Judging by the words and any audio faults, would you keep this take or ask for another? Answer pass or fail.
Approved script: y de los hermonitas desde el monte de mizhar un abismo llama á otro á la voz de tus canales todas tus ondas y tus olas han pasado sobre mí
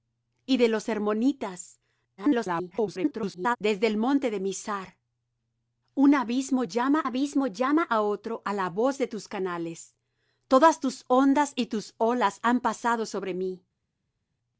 fail